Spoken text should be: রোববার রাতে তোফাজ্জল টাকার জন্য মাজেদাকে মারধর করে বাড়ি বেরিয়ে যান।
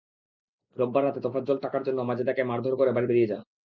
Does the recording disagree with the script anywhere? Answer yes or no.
no